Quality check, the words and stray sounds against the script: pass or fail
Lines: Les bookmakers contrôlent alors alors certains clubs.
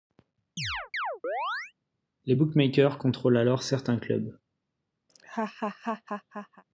fail